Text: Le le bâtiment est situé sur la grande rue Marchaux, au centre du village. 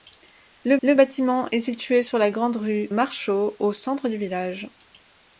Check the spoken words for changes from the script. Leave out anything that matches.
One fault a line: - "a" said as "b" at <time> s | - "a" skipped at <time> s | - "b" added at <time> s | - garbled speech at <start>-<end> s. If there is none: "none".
none